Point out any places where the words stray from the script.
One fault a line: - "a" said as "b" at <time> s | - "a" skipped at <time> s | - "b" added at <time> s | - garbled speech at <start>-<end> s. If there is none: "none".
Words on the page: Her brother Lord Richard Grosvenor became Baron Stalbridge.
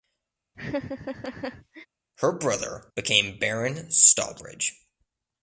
- "Lord Richard Grosvenor" skipped at 2.9 s